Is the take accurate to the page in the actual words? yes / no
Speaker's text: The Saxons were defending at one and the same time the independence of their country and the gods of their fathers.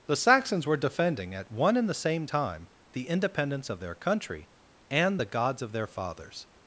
yes